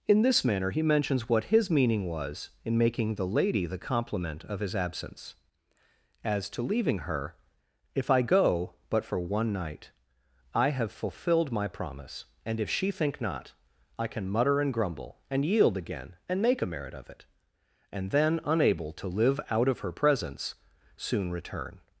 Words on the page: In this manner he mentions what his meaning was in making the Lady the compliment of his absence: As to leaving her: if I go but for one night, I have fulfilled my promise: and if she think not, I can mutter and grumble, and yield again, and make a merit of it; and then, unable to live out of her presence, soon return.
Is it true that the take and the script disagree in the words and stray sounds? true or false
false